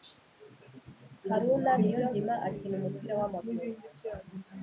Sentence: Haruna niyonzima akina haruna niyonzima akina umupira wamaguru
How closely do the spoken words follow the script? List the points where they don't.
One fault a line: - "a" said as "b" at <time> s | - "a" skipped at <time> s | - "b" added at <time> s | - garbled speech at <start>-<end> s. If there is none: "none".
- "haruna niyonzima akina" skipped at 2.7 s